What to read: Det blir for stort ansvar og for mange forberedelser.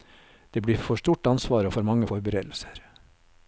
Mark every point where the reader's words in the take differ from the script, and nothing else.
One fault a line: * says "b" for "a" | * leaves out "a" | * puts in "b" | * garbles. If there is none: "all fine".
all fine